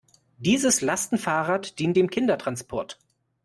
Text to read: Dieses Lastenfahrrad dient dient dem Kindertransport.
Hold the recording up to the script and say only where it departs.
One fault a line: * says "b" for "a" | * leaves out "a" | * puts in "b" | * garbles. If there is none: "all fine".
* leaves out "dient"